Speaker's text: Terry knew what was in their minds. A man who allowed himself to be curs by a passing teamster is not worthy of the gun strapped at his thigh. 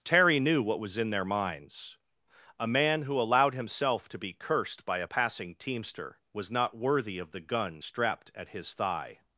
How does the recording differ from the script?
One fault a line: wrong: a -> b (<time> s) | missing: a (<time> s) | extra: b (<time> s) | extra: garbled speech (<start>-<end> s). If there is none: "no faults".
wrong: curs -> cursed (4.3 s)
wrong: is -> was (6.3 s)